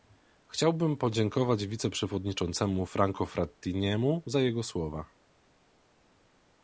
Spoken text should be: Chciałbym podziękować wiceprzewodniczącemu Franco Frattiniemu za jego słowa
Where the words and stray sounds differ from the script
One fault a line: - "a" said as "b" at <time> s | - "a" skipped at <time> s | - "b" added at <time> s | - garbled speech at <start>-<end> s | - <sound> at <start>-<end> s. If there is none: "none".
none